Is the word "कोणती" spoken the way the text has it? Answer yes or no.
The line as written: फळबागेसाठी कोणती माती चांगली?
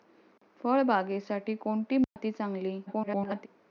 yes